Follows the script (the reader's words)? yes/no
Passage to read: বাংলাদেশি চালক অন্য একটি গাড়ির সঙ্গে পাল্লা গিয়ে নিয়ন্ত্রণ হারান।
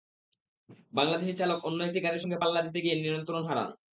no